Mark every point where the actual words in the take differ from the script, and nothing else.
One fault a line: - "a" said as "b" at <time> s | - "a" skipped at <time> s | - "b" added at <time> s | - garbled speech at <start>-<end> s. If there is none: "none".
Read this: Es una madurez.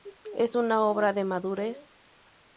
- "obra de" added at 0.8 s